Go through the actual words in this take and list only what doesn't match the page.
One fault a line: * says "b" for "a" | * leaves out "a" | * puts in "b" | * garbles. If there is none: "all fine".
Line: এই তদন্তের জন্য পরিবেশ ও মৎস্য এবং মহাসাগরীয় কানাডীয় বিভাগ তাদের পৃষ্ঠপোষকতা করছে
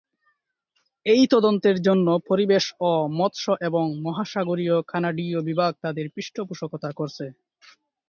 all fine